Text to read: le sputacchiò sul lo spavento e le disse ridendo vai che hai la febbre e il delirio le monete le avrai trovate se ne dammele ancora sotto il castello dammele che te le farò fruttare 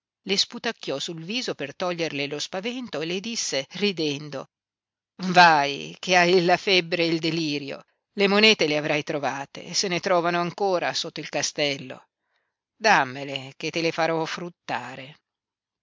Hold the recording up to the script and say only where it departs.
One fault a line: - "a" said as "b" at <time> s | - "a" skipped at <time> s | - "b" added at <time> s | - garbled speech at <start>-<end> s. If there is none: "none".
- "viso per toglierle" added at 1.2 s
- "dammele" said as "trovano" at 10.0 s